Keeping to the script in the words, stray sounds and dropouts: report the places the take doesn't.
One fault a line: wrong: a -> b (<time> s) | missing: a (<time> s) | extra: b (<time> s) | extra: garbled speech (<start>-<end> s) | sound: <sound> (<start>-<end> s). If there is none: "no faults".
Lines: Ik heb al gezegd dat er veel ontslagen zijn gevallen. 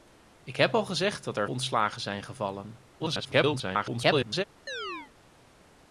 missing: veel (1.5 s)
extra: garbled speech (3.0-4.4 s)
sound: chirp (4.7-5.1 s)